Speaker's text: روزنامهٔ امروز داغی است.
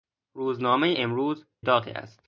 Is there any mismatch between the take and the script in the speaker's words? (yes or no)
no